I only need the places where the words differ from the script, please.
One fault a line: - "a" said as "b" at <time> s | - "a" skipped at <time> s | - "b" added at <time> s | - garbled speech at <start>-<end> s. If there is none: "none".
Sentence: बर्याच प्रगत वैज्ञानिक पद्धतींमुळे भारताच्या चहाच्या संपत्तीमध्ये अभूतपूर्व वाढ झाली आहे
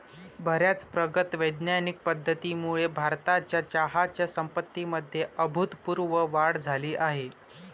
none